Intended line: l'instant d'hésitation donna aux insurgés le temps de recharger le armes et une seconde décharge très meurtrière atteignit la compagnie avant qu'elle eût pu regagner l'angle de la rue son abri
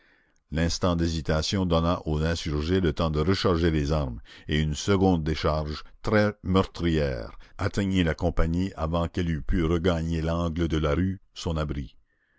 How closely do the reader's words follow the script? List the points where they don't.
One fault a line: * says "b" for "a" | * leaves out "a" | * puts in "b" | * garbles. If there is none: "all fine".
* says "les" for "le"